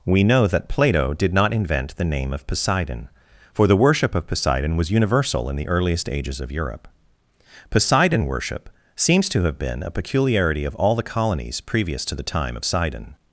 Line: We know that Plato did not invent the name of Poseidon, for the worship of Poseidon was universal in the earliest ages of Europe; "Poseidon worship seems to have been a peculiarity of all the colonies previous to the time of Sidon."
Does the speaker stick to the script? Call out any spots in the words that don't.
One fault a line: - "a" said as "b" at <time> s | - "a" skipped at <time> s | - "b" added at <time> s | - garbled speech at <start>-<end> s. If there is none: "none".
none